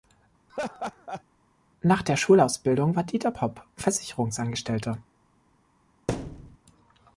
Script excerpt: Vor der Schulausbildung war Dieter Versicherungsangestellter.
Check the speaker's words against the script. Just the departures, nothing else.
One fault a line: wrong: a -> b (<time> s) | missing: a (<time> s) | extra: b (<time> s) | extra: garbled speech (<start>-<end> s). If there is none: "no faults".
wrong: Vor -> Nach (1.8 s)
extra: Popp (3.3 s)